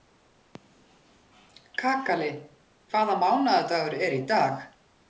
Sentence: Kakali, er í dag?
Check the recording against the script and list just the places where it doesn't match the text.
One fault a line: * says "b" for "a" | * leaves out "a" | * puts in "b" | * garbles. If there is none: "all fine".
* puts in "hvaða mánaðardagur"